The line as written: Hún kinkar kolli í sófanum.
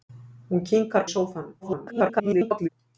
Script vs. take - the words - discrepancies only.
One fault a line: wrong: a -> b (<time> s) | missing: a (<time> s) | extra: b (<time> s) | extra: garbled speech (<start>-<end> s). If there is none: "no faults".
missing: kolli (1.1 s)
extra: garbled speech (1.6-2.7 s)